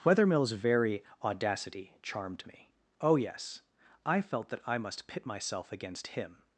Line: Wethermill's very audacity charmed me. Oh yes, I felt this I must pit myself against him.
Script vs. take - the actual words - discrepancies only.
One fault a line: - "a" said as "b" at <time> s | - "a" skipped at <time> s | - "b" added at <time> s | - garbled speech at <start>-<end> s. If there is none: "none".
- "this" said as "that" at 4.5 s